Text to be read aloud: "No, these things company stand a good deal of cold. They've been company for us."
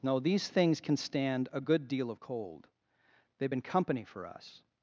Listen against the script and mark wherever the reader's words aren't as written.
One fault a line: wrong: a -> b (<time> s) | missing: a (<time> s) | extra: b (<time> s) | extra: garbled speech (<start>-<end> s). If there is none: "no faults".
wrong: company -> can (0.8 s)